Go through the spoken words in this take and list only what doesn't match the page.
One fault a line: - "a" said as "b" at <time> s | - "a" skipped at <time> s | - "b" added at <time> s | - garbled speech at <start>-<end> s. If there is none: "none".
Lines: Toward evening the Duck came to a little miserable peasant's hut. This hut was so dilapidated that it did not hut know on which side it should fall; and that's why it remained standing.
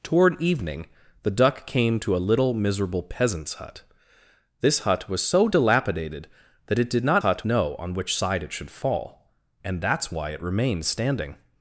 none